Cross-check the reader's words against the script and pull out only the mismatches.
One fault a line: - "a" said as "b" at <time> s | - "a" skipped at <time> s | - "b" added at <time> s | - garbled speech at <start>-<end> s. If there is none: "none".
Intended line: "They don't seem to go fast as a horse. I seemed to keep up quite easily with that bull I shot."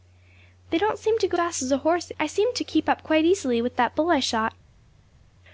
none